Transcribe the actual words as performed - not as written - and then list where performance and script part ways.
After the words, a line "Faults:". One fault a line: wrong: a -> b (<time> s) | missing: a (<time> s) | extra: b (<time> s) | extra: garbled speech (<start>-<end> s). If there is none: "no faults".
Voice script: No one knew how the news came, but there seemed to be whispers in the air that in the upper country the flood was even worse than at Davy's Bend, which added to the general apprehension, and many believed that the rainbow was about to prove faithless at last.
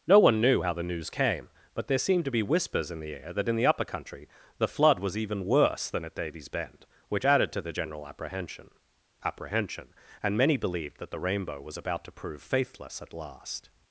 No one knew how the news came, but there seemed to be whispers in the air that in the upper country the flood was even worse than at Davy's Bend, which added to the general apprehension apprehension, and many believed that the rainbow was about to prove faithless at last.
Faults:
extra: apprehension (9.2 s)